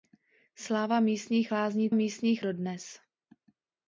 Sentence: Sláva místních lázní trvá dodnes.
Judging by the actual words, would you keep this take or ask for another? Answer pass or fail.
fail